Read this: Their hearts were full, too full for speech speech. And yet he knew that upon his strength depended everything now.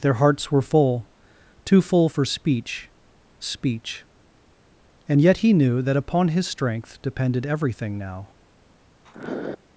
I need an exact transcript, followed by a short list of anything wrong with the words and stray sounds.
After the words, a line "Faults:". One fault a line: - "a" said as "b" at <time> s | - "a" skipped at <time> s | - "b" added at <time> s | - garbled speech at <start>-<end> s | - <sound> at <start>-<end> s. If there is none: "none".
Their hearts were full, too full for speech speech. And yet he knew that upon his strength depended everything now.
Faults:
- sniff at 9.0-9.6 s